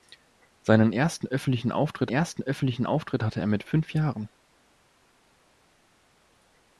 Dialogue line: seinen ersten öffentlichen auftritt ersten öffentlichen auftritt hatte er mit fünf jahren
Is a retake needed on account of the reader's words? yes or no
no